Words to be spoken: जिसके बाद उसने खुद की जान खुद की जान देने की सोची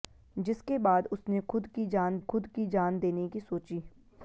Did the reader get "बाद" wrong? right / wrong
right